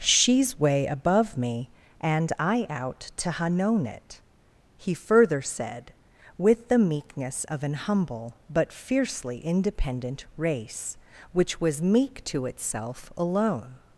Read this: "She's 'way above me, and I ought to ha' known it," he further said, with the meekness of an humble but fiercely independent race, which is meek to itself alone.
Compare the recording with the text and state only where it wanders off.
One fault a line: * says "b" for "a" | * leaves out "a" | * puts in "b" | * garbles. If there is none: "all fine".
* says "out" for "ought"
* says "was" for "is"